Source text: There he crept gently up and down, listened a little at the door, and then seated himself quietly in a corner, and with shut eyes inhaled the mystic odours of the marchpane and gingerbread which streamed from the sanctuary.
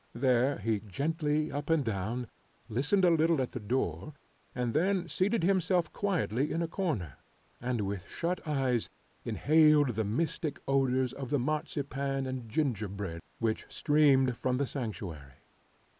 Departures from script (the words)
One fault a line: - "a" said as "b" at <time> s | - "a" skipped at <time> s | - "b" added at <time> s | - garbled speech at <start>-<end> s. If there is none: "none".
- "crept" skipped at 0.8 s